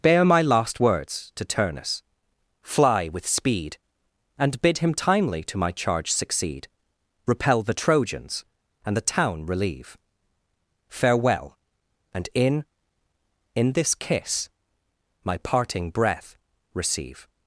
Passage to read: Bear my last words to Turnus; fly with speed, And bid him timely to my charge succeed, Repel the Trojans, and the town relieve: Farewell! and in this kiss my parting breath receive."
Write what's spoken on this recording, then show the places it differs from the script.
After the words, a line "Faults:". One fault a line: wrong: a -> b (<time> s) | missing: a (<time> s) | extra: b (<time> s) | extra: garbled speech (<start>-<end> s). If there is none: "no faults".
Bear my last words to Turnus; fly with speed, And bid him timely to my charge succeed, Repel the Trojans, and the town relieve: Farewell! and in in this kiss my parting breath receive."
Faults:
extra: in (13.6 s)